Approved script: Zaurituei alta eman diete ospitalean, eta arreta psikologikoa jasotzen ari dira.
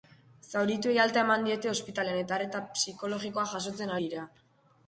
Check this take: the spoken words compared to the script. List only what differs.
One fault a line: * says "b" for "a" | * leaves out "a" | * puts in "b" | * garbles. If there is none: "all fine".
* leaves out "ari"